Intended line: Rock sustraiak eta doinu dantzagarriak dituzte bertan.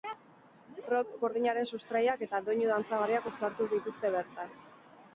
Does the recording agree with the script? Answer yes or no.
no